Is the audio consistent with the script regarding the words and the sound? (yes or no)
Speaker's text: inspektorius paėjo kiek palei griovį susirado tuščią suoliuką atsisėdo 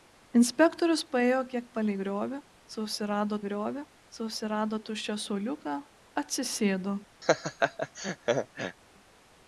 no